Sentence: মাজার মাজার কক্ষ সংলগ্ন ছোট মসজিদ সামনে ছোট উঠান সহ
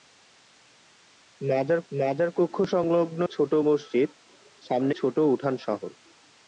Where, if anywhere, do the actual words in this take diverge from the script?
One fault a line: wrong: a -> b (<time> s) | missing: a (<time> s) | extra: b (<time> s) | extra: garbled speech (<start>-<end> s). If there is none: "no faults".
no faults